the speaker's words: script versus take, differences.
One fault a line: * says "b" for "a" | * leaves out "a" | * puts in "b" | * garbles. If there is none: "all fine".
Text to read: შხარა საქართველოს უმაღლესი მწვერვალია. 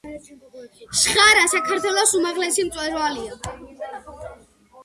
all fine